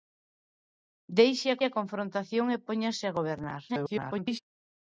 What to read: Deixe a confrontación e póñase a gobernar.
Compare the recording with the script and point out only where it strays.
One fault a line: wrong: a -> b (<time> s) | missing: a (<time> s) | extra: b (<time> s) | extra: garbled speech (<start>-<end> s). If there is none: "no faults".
extra: a (1.6 s)
extra: garbled speech (3.7-4.4 s)